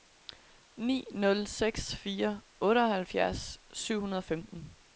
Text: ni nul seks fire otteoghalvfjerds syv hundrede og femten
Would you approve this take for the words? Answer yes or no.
yes